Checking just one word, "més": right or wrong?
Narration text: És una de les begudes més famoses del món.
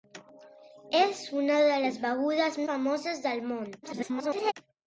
wrong